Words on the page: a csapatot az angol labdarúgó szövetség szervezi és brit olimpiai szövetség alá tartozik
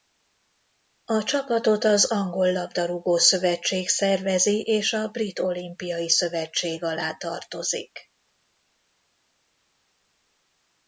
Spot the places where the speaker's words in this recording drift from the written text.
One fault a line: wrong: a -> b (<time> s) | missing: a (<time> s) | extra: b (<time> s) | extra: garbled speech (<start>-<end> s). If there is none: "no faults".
extra: a (4.9 s)